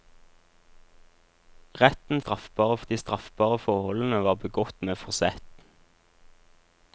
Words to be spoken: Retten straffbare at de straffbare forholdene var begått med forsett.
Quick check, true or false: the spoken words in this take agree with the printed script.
true